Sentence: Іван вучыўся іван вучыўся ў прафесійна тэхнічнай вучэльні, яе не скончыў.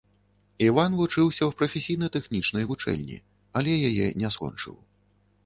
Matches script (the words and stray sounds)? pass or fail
fail